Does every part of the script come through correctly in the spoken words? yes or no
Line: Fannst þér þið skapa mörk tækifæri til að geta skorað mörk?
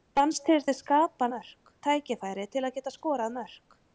yes